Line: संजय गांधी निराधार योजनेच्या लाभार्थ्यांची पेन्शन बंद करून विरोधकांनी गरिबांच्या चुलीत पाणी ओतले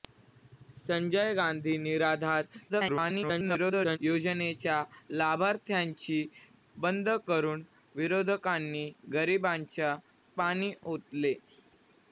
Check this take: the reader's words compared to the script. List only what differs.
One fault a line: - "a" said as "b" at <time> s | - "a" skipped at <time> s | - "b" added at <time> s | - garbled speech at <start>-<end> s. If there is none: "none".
- garbled speech at 2.7-4.0 s
- "पेन्शन" skipped at 6.2 s
- "चुलीत" skipped at 10.0 s